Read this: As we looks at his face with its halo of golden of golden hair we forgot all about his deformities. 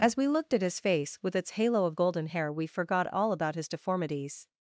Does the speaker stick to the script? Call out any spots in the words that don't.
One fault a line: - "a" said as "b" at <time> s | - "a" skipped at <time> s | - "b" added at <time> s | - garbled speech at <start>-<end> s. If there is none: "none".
- "looks" said as "looked" at 0.3 s
- "of golden" skipped at 2.3 s